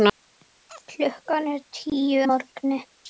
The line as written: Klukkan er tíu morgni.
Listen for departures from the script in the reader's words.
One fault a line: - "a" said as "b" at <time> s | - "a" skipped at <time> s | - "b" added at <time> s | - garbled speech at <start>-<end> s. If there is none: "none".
none